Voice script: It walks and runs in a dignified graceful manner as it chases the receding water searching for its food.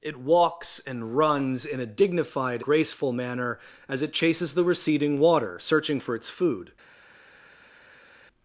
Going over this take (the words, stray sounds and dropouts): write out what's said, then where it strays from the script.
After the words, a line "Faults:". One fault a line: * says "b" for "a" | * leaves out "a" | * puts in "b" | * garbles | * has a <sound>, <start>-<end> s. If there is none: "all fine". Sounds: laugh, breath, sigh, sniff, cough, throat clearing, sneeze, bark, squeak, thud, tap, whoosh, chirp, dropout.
It walks and runs in a dignified graceful manner as it chases the receding water searching for its food.
Faults:
all fine